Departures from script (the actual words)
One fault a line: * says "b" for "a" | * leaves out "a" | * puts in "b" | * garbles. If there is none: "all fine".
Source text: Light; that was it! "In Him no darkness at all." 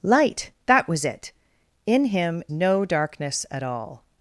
all fine